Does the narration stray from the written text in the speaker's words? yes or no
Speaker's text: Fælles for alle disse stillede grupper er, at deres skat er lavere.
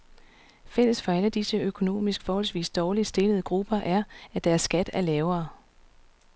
yes